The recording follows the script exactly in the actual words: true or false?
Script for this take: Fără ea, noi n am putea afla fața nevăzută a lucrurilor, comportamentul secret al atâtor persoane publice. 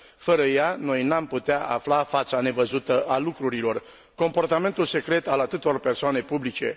true